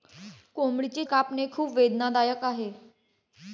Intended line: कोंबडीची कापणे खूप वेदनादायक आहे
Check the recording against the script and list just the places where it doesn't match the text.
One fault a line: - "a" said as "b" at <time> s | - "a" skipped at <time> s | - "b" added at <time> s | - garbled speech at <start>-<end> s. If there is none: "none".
none